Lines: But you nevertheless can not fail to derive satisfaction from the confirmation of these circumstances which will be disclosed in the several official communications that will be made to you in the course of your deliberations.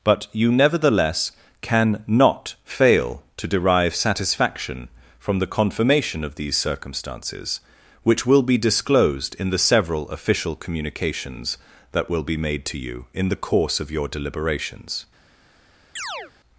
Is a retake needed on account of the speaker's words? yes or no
no